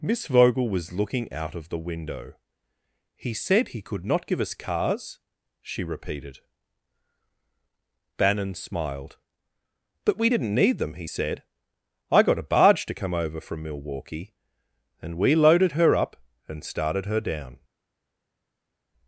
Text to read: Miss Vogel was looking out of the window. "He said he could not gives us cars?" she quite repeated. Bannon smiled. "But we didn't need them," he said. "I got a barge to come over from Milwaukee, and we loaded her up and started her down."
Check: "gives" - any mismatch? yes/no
yes